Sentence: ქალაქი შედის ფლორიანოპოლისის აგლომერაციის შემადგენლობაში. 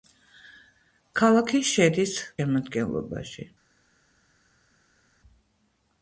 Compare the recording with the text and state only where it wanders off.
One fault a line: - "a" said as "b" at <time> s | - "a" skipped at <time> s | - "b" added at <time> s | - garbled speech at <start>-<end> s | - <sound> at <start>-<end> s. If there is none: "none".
- "ფლორიანოპოლისის აგლომერაციის" skipped at 2.1 s